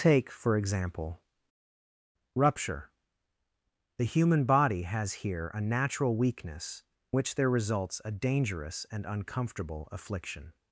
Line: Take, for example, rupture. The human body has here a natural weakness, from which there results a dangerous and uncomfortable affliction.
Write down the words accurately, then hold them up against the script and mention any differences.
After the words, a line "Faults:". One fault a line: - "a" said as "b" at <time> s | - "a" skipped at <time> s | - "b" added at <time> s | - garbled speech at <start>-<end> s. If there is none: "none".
Take, for example, rupture. The human body has here a natural weakness, which there results a dangerous and uncomfortable affliction.
Faults:
- "from" skipped at 6.8 s